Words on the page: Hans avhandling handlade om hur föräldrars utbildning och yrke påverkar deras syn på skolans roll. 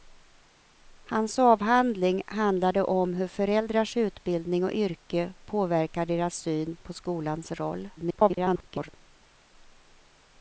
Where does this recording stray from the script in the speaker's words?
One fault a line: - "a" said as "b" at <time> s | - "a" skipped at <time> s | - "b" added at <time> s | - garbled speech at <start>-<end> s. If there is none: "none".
- garbled speech at 8.0-8.9 s